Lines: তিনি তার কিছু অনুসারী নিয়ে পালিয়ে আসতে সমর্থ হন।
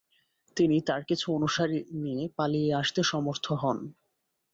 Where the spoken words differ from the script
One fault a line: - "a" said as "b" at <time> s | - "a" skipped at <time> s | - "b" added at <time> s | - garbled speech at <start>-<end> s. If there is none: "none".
none